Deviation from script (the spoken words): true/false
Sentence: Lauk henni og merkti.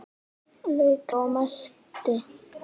true